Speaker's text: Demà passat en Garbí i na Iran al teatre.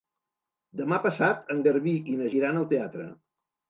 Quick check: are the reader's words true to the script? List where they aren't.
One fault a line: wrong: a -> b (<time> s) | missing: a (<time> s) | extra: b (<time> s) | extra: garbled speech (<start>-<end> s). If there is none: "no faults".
no faults